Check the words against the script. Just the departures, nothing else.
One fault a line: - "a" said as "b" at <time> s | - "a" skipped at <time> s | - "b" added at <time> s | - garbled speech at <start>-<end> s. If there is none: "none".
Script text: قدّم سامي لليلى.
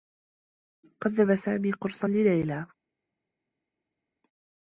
- "قرصا" added at 1.7 s